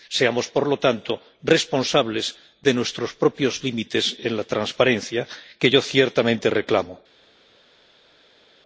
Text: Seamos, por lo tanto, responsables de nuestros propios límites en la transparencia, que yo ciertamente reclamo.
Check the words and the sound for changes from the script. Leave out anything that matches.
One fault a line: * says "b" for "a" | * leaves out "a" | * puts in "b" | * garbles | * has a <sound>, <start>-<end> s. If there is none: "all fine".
all fine